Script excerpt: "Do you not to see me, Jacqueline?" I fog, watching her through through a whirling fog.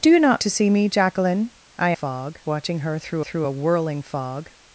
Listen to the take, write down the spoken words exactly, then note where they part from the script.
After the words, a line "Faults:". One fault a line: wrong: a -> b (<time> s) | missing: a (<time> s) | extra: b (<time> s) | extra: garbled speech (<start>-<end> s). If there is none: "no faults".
"Do you not to see me, Jacqueline?" I fog, watching her through through a whirling fog.
Faults:
no faults